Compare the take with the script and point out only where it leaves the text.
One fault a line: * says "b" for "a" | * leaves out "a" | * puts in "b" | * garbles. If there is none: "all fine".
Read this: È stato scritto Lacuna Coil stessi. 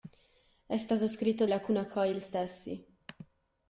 all fine